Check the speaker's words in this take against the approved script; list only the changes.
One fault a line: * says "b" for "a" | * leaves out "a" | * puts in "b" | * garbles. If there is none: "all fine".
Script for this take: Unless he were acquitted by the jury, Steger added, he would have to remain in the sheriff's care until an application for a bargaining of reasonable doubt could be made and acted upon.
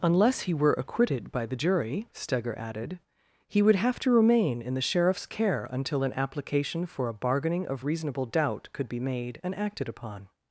all fine